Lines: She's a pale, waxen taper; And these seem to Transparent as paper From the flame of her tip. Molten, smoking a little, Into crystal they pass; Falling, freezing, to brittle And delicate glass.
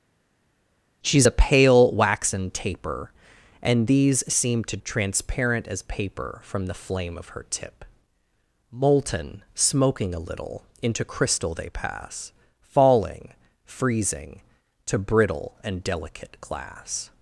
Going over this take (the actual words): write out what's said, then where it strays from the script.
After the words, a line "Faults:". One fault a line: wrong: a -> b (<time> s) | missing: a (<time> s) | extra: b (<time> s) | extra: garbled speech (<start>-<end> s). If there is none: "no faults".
She's a pale, waxen taper; And these seem to Transparent as paper From the flame of her tip. Molten, smoking a little, Into crystal they pass; Falling, freezing, to brittle And delicate glass.
Faults:
no faults